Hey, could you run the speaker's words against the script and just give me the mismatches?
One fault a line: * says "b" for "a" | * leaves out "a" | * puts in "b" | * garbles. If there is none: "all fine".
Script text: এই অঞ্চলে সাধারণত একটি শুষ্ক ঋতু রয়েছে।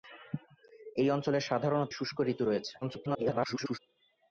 * leaves out "একটি"
* garbles